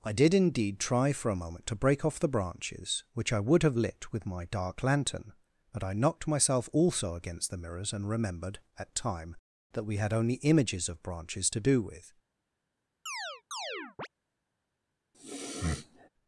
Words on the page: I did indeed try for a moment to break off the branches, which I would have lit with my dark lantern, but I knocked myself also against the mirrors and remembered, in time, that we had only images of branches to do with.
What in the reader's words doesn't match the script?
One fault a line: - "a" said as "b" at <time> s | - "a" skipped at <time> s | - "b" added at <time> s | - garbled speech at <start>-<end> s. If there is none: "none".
- "in" said as "at" at 8.8 s